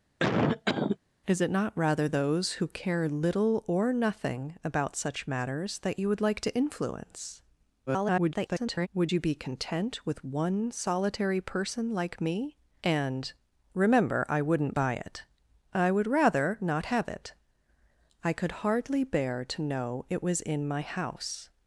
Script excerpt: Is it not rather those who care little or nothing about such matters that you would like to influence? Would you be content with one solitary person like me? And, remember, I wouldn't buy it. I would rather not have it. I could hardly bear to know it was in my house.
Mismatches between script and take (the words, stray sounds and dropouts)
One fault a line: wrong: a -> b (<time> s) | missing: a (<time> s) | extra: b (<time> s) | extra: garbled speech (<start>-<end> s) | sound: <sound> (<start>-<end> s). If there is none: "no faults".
sound: cough (0.2-1.0 s)
extra: garbled speech (7.9-8.9 s)